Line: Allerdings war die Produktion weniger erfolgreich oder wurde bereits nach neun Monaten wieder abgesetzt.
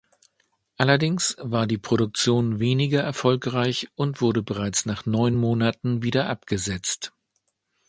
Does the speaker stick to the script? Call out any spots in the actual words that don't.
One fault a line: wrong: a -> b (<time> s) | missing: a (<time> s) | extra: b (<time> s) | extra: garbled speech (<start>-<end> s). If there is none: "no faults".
wrong: oder -> und (4.0 s)